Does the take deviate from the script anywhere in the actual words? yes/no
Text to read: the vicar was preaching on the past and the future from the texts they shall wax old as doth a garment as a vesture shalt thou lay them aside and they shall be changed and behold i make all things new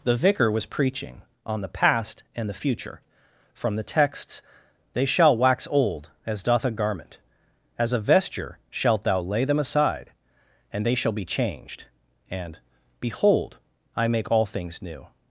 no